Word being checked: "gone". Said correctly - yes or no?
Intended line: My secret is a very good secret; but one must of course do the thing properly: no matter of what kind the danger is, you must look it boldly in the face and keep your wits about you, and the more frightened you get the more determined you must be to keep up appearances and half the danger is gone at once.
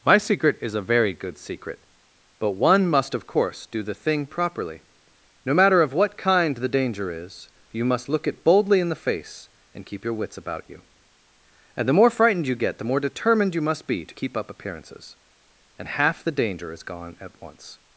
yes